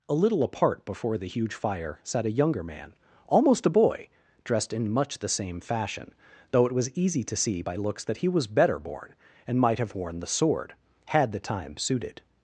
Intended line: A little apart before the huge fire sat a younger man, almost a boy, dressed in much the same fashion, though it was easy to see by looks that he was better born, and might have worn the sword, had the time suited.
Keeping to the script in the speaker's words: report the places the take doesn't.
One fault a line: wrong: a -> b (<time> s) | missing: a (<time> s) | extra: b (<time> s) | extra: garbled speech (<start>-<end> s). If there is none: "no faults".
no faults